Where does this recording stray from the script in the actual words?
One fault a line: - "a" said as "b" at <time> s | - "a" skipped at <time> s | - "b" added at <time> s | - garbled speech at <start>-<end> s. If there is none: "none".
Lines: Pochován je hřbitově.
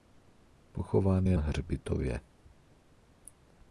none